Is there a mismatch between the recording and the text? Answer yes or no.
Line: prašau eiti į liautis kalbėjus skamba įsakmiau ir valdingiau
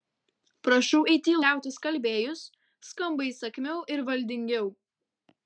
no